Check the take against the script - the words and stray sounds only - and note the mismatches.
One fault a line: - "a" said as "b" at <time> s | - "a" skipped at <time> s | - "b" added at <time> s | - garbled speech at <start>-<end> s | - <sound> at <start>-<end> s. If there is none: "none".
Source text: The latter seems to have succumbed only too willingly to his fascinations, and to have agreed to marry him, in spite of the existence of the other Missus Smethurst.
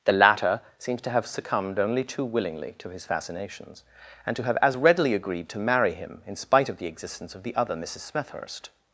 - "as readily" added at 4.6 s